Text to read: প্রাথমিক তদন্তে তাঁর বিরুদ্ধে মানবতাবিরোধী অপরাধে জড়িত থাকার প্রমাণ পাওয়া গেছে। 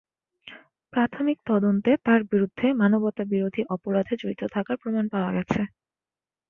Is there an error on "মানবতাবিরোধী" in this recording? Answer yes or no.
no